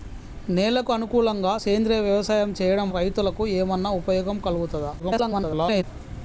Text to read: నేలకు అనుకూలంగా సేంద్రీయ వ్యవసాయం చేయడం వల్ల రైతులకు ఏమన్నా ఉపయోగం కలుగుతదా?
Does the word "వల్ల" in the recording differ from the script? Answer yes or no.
yes